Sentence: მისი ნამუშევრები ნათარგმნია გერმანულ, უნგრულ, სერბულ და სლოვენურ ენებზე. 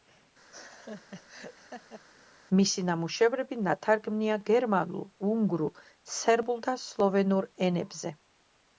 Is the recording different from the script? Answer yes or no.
no